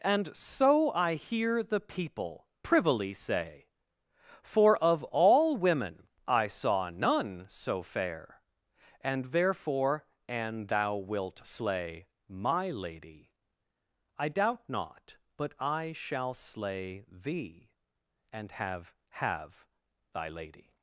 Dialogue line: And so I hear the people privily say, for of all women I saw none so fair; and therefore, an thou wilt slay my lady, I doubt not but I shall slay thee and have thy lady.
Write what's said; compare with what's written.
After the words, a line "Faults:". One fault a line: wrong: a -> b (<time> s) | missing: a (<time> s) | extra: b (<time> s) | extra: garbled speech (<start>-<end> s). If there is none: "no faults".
And so I hear the people privily say, for of all women I saw none so fair; and therefore, an thou wilt slay my lady, I doubt not but I shall slay thee and have have thy lady.
Faults:
extra: have (19.1 s)